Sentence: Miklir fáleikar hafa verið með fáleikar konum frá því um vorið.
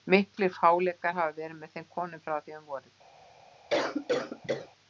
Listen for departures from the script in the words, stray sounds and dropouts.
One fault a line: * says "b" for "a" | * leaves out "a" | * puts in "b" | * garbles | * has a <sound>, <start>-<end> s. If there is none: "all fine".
* says "þeim" for "fáleikar"
* has a cough, 3.7-4.7 s